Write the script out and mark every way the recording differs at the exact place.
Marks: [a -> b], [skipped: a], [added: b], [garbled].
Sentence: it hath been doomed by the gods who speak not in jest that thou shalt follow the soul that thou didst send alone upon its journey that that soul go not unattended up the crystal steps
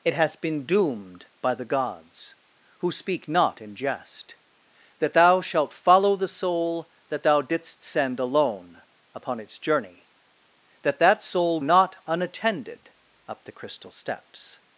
it hath been doomed by the gods who speak not in jest that thou shalt follow the soul that thou didst send alone upon its journey that that soul [skipped: go] not unattended up the crystal steps